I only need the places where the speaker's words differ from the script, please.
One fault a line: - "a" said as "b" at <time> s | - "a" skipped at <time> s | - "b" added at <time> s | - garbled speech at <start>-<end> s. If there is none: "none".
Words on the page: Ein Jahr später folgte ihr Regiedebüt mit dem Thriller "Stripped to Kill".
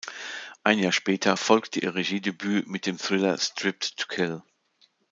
none